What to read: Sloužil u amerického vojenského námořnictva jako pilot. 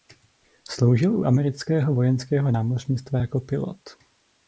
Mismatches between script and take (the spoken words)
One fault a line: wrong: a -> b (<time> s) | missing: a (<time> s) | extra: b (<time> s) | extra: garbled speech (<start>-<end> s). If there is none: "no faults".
no faults